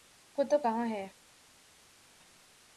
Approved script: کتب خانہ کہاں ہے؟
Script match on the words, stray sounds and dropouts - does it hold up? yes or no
no